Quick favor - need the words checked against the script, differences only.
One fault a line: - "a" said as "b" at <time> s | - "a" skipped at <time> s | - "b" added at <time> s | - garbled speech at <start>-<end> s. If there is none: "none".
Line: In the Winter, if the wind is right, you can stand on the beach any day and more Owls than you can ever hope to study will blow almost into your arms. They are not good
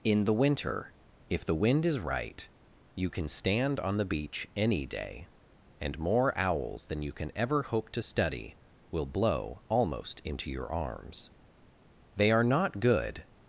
none